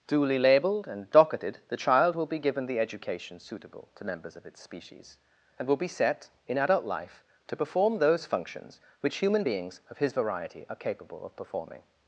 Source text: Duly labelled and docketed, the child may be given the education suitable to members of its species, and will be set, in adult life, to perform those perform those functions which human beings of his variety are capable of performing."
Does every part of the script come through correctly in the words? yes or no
no